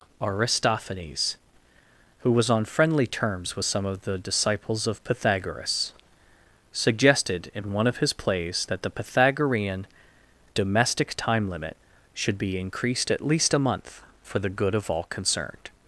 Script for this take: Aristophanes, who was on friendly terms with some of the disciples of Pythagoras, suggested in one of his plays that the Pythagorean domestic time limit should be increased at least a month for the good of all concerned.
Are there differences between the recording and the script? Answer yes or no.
no